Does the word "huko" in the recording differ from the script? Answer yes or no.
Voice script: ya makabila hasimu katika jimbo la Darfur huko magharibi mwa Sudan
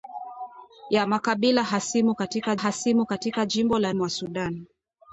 yes